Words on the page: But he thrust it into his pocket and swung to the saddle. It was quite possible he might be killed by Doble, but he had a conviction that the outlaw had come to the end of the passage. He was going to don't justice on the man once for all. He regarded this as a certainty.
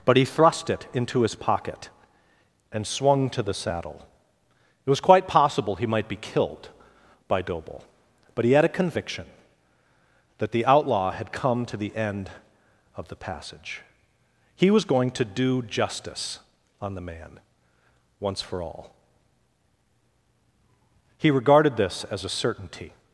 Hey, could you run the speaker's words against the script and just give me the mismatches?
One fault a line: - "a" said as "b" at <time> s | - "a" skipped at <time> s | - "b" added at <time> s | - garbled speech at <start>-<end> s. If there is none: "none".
- "don't" said as "do" at 15.3 s